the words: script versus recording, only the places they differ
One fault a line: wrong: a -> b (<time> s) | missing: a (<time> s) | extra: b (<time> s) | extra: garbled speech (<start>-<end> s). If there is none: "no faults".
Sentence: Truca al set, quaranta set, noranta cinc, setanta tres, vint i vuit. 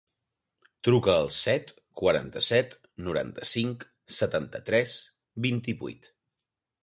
no faults